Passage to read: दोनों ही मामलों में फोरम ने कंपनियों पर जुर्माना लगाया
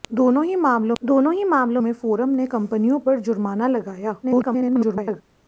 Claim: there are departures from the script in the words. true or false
true